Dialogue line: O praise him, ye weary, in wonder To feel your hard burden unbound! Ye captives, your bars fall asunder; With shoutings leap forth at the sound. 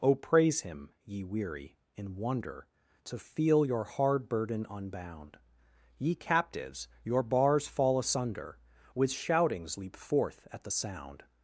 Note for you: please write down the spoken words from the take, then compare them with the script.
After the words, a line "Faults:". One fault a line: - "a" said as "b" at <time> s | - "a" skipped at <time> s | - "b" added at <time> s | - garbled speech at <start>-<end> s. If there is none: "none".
O praise him, ye weary, in wonder To feel your hard burden unbound! Ye captives, your bars fall asunder; With shoutings leap forth at the sound.
Faults:
none